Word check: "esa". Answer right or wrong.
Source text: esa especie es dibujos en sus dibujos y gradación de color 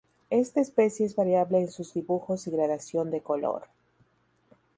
wrong